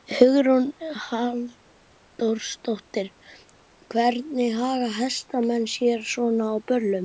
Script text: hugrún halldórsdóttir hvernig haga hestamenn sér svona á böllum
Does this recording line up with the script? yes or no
yes